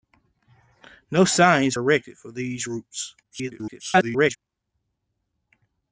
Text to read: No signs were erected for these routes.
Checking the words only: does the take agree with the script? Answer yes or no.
no